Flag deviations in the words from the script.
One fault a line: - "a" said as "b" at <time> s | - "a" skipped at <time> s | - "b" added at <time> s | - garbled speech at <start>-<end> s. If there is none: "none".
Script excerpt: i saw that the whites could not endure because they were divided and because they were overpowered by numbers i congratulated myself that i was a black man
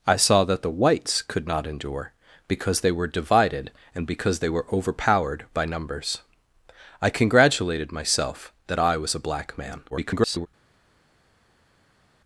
- garbled speech at 9.9-10.5 s